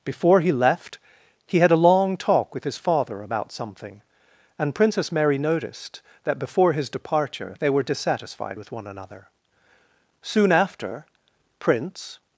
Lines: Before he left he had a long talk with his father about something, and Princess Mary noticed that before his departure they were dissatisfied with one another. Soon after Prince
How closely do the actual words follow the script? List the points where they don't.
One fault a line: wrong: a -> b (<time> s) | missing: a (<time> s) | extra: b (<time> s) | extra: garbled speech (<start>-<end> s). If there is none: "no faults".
no faults